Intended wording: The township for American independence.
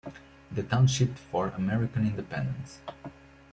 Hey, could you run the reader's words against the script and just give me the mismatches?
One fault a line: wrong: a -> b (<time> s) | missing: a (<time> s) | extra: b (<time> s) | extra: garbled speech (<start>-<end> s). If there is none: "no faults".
no faults